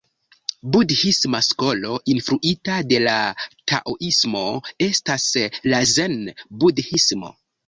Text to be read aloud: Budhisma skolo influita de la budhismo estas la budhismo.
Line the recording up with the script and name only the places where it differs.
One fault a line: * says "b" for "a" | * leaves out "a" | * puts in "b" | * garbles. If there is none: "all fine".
* says "taoismo" for "budhismo"
* puts in "zen"